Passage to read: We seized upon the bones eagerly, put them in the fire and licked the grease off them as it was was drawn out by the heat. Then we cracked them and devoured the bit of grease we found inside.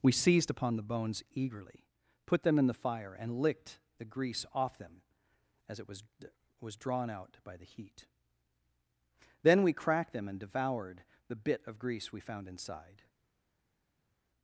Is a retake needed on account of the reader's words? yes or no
no